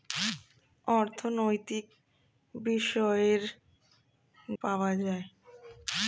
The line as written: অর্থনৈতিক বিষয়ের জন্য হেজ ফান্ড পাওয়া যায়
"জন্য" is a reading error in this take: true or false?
true